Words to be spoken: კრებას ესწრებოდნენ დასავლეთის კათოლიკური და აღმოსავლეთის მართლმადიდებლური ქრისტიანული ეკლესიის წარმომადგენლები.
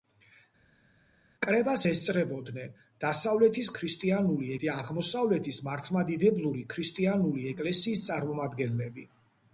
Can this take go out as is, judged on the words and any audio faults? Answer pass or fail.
fail